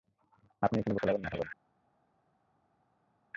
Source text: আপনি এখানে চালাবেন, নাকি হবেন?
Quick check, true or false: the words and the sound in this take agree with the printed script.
true